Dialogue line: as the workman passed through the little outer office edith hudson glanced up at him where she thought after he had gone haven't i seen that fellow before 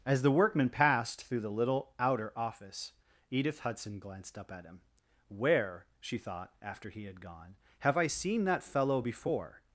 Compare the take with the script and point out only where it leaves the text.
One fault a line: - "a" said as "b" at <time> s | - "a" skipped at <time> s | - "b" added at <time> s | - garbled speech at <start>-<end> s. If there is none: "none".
- "haven't" said as "have" at 7.8 s